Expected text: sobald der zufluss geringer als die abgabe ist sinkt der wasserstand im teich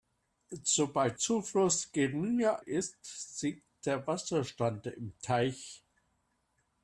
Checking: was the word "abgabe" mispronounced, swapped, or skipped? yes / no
yes